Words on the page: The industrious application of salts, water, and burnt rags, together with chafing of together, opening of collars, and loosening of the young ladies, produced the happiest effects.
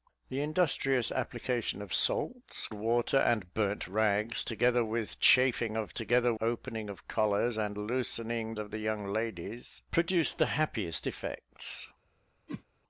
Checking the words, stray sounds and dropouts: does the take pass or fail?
fail